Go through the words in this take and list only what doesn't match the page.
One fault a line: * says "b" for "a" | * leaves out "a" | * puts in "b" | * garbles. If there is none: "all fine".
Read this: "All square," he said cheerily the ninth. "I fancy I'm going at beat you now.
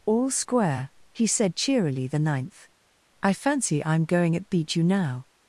all fine